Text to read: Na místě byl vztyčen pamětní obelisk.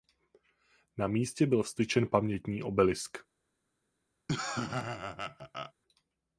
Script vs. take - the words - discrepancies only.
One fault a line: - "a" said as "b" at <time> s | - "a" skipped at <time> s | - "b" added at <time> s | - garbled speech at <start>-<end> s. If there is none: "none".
none